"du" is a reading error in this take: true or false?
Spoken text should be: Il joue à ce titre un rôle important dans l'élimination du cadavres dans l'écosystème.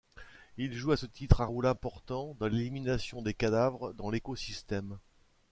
true